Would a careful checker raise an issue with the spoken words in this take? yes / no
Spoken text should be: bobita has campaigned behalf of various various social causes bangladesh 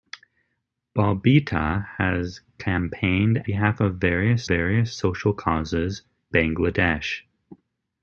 no